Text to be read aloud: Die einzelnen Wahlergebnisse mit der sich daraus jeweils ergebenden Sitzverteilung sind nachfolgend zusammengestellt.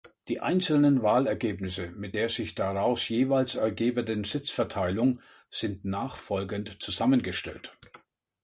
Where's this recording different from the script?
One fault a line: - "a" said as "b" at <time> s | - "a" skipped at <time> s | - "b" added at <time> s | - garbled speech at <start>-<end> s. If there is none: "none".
none